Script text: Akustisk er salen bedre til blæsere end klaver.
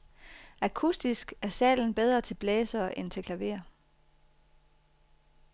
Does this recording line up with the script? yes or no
no